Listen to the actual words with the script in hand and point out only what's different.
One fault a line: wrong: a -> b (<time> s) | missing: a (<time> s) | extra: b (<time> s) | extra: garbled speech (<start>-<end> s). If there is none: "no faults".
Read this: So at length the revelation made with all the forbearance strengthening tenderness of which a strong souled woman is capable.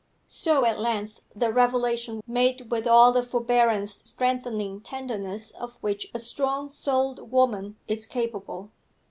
no faults